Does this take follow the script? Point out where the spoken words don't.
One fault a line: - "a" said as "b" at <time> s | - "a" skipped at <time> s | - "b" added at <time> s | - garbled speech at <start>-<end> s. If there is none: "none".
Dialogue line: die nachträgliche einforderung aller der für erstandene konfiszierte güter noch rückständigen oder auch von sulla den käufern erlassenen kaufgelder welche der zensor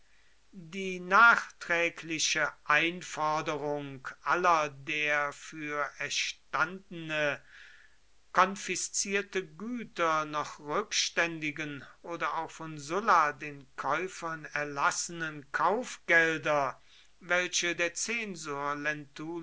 none